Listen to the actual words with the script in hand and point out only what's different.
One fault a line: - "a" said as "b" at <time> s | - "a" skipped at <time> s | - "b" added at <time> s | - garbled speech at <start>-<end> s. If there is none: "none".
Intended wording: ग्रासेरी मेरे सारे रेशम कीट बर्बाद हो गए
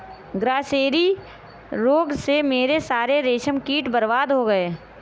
- "रोग से" added at 1.7 s